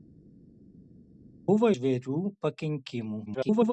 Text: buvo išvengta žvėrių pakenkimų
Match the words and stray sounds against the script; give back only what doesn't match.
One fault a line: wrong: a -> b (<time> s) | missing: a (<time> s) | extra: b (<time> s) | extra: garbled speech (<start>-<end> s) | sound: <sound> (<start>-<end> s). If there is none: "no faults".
missing: išvengta (1.7 s)
extra: garbled speech (3.3-3.7 s)